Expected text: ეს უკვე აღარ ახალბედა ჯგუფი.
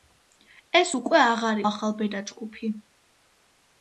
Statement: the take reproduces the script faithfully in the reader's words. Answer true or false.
true